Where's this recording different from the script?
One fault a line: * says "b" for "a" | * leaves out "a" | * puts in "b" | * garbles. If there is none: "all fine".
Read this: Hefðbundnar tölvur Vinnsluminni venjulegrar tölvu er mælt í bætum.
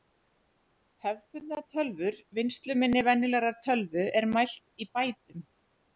all fine